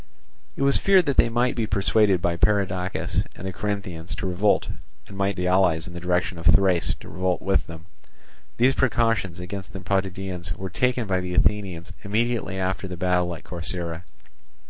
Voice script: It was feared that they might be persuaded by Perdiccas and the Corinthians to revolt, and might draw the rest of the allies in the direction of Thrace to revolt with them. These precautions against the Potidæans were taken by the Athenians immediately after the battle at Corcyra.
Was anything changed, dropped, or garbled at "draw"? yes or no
yes